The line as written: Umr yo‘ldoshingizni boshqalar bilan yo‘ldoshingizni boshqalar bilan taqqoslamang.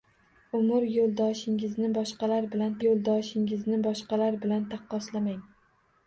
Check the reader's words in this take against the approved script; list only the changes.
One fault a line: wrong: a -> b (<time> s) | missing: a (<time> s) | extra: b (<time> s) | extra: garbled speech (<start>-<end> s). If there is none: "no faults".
no faults